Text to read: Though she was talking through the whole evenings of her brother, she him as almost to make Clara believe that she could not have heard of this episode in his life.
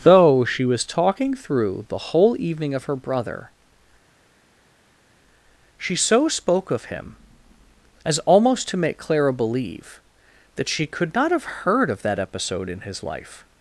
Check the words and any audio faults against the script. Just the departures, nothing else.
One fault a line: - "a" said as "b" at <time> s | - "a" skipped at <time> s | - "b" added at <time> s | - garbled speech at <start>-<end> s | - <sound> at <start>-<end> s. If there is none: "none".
- "evenings" said as "evening" at 2.4 s
- "so spoke of" added at 6.0 s
- "this" said as "that" at 12.0 s